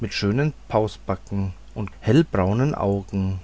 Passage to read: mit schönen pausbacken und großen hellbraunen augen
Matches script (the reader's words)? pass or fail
fail